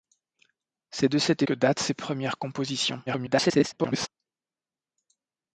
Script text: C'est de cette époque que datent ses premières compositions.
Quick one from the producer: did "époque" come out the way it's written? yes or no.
no